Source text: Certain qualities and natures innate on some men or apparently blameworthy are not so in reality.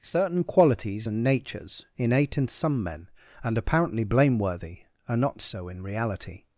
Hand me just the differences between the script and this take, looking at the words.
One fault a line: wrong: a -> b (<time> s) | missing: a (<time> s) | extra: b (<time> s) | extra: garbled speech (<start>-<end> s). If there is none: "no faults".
wrong: on -> in (2.4 s)
wrong: or -> and (3.4 s)